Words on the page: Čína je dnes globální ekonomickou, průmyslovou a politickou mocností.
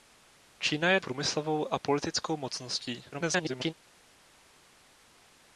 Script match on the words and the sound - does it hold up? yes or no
no